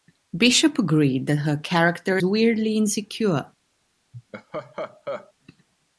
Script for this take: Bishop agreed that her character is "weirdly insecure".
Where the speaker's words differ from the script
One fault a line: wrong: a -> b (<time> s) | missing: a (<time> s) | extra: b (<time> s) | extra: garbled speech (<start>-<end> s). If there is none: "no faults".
missing: is (2.2 s)